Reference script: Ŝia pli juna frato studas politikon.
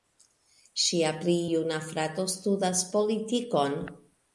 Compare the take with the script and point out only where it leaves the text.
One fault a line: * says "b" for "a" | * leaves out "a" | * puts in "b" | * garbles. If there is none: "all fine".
all fine